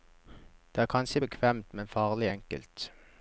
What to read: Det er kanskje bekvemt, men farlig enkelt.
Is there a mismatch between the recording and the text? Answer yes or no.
no